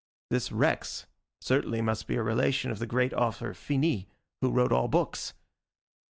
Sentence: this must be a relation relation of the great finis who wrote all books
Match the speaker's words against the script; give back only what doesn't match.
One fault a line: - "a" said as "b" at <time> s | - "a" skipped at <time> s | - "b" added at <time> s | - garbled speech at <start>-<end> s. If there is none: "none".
- "rex certainly" added at 0.5 s
- "relation" skipped at 2.7 s
- "author" added at 3.1 s